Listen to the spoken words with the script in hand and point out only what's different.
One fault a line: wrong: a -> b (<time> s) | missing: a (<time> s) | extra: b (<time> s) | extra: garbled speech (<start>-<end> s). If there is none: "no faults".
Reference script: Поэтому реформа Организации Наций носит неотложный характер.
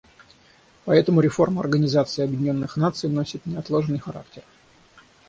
extra: Объединенных (2.2 s)